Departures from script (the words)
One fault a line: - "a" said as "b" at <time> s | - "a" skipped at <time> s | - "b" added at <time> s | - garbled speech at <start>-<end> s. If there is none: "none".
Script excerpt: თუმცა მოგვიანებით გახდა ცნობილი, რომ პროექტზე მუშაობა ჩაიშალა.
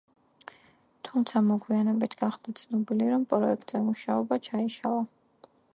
none